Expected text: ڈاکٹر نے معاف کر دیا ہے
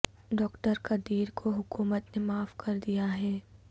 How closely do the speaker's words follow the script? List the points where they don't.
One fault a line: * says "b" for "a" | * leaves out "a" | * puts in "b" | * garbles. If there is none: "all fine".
* puts in "قدیر کو حکومت"